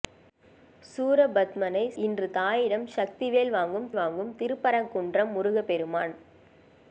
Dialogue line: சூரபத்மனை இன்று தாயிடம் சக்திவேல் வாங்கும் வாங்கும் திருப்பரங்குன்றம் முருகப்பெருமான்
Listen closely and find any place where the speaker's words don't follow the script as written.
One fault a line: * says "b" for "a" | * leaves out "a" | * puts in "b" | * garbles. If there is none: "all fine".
all fine